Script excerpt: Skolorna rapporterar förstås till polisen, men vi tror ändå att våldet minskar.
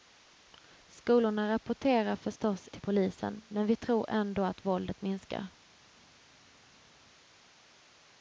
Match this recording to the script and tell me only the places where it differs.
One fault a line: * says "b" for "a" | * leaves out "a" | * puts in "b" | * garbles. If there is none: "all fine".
all fine